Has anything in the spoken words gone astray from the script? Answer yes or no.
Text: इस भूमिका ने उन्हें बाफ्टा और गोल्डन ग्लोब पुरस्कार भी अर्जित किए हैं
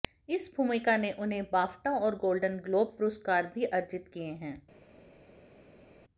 no